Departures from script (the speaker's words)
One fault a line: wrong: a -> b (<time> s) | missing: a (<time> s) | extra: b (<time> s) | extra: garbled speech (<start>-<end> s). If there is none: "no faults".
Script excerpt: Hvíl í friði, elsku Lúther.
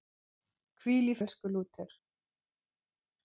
missing: friði (1.1 s)